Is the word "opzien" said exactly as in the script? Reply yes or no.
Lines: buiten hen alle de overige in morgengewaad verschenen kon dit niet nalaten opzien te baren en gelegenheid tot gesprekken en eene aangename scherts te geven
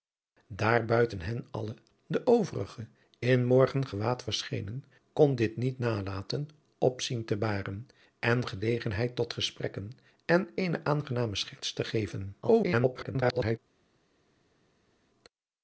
yes